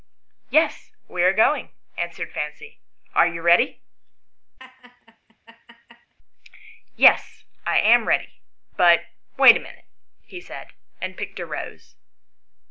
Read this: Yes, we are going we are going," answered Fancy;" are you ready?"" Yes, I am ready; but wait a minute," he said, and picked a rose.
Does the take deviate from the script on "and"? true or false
false